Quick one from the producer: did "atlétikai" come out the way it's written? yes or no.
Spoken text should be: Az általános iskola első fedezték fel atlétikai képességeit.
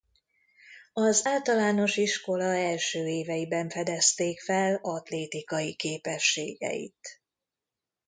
yes